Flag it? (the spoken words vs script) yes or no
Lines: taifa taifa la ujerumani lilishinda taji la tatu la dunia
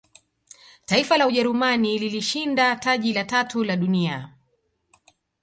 yes